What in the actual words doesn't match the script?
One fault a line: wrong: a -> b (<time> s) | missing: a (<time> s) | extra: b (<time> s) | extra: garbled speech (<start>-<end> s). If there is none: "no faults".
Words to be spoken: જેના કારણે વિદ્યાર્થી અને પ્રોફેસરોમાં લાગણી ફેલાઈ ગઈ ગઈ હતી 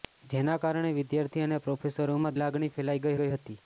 no faults